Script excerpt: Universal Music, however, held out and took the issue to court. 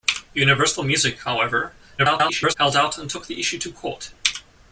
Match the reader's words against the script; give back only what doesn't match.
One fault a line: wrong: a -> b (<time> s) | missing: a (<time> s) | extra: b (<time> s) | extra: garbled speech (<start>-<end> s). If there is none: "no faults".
extra: garbled speech (2.0-2.5 s)